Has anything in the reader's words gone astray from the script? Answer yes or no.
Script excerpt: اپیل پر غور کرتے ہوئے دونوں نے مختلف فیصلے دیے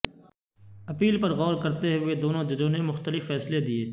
yes